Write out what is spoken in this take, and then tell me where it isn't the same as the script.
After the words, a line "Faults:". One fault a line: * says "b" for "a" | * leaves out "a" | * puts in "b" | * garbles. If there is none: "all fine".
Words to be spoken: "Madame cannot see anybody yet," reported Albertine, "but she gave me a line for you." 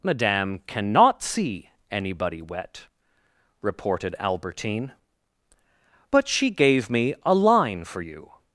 "Madame cannot see anybody wet," reported Albertine, "but she gave me a line for you."
Faults:
* says "wet" for "yet"